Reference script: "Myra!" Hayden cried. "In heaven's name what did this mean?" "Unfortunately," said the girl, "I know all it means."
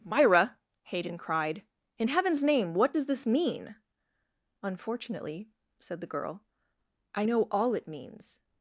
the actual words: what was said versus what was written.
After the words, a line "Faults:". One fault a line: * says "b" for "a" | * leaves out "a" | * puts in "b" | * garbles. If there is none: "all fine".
"Myra!" Hayden cried. "In heaven's name what does this mean?" "Unfortunately," said the girl, "I know all it means."
Faults:
* says "does" for "did"